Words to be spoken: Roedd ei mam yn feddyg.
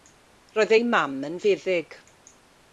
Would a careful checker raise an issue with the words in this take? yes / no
no